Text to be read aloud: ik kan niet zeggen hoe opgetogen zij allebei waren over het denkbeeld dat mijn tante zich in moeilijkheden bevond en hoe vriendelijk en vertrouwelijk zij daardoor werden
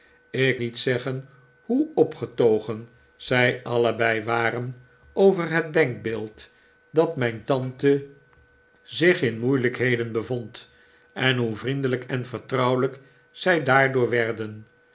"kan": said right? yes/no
no